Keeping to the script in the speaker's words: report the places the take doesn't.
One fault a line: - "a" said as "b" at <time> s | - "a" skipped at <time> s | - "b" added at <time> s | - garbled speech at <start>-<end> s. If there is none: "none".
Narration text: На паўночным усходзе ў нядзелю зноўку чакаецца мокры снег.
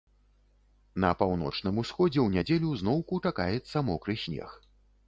none